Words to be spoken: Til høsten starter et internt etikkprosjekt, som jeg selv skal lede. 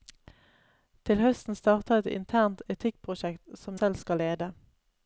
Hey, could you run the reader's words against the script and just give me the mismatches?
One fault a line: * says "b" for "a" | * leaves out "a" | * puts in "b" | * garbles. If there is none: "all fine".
* leaves out "jeg"